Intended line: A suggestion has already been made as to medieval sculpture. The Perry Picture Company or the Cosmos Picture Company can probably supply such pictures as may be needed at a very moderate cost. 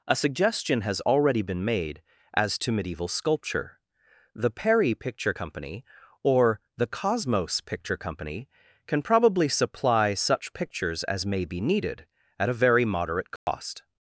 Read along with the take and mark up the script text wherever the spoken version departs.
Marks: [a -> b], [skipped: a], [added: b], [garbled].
A suggestion has already been made as to medieval sculpture. The Perry Picture Company or the Cosmos Picture Company can probably supply such pictures as may be needed at a very moderate cost.